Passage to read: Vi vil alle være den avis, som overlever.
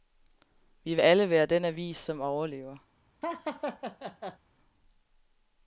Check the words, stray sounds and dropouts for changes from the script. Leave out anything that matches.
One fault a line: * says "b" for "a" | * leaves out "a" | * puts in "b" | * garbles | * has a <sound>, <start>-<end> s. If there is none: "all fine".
* has a laugh, 3.2-4.4 s